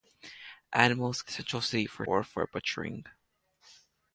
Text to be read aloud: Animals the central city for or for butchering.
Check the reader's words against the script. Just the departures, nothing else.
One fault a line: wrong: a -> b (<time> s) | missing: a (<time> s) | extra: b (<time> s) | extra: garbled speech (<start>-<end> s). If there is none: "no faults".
no faults